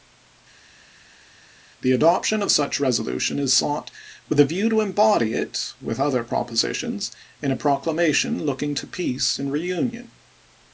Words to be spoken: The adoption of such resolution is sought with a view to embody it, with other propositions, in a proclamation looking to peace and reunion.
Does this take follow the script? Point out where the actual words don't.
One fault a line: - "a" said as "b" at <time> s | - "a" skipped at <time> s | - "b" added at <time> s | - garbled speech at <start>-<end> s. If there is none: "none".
none